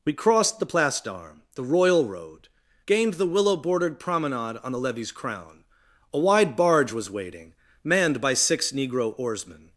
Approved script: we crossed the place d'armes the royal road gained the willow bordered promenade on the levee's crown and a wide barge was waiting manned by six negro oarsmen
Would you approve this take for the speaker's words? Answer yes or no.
no